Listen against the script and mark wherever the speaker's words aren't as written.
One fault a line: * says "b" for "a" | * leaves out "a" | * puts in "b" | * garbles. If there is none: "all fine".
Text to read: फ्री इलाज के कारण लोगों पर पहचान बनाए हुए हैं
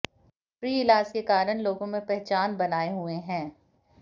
* says "में" for "पर"